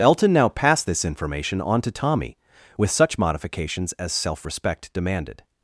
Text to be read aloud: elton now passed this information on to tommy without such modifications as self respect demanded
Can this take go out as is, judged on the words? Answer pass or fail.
fail